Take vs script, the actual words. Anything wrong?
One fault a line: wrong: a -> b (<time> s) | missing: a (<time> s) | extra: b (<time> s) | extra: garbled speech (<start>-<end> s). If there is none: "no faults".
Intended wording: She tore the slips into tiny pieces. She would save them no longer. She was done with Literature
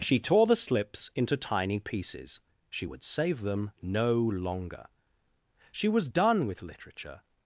no faults